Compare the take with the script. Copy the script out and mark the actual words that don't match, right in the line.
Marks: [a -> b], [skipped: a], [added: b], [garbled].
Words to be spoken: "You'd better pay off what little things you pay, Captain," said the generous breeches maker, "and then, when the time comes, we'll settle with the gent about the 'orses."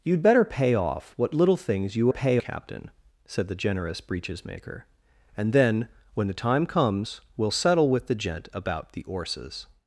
"You'd better pay off what little things you pay, Captain," said the generous breeches maker, "and then, when the time comes, we'll settle with the gent about the 'orses."